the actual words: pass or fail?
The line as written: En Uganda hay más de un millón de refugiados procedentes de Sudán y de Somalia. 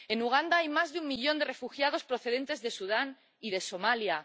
pass